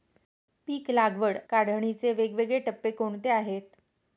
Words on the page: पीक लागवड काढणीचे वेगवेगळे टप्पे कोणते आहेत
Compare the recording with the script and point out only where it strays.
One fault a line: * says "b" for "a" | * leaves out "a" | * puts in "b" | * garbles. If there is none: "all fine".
all fine